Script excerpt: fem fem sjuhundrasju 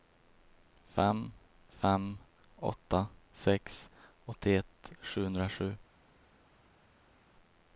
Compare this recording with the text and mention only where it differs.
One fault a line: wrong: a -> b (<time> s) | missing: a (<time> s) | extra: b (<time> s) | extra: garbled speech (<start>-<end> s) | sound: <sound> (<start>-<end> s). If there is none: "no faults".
extra: åtta sex åttioett (2.6 s)